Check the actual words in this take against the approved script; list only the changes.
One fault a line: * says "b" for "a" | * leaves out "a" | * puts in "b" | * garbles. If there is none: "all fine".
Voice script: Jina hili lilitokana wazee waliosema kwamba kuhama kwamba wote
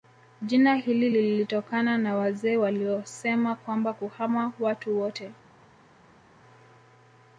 * puts in "na"
* says "watu" for "kwamba"